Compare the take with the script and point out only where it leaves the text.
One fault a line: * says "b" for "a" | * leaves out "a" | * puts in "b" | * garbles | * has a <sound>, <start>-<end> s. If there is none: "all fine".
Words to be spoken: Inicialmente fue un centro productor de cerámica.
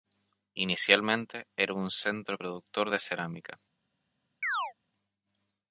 * says "era" for "fue"
* has a chirp, 4.4-4.7 s